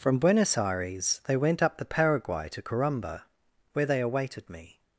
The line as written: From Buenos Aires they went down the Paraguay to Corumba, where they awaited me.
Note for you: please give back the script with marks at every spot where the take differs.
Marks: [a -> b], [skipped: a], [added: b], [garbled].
From Buenos Aires they went [down -> up] the Paraguay to Corumba, where they awaited me.